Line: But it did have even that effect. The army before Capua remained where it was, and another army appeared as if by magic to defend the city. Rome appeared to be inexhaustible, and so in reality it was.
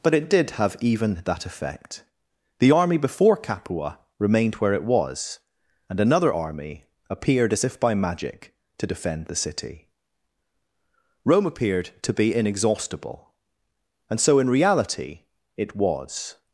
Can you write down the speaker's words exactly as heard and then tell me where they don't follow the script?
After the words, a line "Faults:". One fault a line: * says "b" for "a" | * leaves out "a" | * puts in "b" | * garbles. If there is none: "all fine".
But it did have even that effect. The army before Capua remained where it was, and another army appeared as if by magic to defend the city. Rome appeared to be inexhaustible, and so in reality it was.
Faults:
all fine